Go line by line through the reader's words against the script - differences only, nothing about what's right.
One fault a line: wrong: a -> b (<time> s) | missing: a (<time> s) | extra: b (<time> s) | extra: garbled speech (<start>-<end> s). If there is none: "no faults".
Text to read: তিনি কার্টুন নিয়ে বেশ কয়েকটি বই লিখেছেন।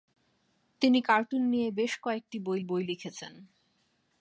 extra: বই (2.6 s)